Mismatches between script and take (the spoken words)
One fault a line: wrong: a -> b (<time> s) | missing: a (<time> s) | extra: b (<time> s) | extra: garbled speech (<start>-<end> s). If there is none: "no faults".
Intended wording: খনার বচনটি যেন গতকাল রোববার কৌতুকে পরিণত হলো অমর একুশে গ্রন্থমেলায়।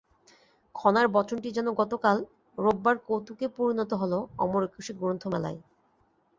no faults